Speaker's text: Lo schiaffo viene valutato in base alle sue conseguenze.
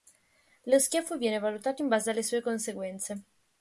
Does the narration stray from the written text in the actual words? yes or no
no